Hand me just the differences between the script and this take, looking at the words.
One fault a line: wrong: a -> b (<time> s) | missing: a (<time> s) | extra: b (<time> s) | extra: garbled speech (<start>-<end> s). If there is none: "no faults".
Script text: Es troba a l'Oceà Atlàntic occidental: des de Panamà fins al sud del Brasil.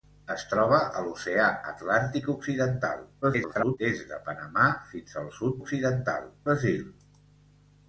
extra: garbled speech (3.2-3.8 s)
wrong: del -> occidental (5.6 s)